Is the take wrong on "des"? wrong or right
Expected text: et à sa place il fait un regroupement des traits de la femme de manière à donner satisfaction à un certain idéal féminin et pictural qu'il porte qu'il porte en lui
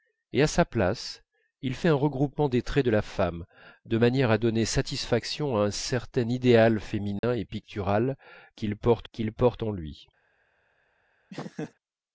right